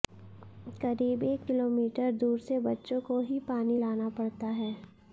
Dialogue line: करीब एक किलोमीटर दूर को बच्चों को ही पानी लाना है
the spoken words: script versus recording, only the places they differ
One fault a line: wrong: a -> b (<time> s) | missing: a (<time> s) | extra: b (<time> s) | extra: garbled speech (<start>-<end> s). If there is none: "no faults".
wrong: को -> से (2.4 s)
extra: पड़ता (4.2 s)